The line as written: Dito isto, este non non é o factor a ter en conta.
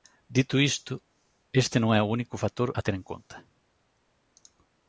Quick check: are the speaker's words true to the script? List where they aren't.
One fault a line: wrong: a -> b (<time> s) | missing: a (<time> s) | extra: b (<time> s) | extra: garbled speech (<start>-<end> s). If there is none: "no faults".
missing: non (1.9 s)
extra: único (2.1 s)